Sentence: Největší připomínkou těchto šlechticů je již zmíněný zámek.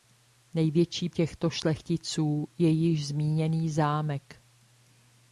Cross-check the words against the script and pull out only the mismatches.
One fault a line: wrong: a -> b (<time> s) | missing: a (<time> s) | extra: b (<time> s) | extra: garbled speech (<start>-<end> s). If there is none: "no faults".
missing: připomínkou (1.1 s)